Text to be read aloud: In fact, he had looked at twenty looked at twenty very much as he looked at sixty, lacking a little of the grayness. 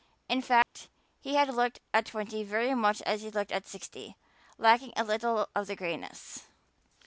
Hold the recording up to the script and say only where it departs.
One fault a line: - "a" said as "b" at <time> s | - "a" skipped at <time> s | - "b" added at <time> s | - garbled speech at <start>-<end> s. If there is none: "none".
- "looked at twenty" skipped at 2.4 s